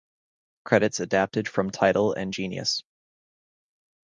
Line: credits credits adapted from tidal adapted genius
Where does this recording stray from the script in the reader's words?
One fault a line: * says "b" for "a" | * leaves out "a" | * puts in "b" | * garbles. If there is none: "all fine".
* leaves out "credits"
* says "and" for "adapted"